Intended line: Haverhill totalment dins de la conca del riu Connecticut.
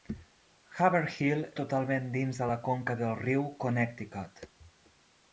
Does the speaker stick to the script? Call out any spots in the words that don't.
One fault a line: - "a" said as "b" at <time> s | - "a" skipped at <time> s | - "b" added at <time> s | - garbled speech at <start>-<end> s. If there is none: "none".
none